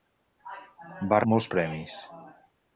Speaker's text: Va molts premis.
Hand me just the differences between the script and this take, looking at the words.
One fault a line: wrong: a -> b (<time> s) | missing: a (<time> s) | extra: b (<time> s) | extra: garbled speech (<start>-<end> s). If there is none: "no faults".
no faults